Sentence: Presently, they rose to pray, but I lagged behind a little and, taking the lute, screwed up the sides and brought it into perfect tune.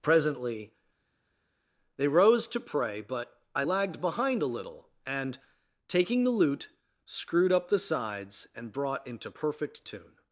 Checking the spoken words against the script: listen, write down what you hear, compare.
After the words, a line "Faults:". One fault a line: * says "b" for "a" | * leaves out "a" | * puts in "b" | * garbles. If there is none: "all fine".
Presently, they rose to pray, but I lagged behind a little and, taking the lute, screwed up the sides and brought into perfect tune.
Faults:
* leaves out "it"